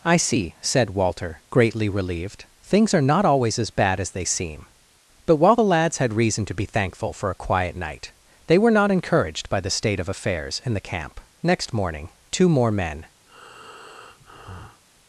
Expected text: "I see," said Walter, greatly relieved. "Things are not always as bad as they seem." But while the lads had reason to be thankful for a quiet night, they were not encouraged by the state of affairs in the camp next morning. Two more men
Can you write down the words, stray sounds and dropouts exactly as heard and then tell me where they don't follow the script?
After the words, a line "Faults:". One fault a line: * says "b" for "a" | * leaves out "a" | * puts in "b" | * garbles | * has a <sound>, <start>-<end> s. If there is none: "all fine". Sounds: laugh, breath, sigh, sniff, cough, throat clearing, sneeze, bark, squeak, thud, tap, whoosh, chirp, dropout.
"I see," said Walter, greatly relieved. "Things are not always as bad as they seem." But while the lads had reason to be thankful for a quiet night, they were not encouraged by the state of affairs in the camp next morning. Two more men
Faults:
* has a breath, 13.3-14.8 s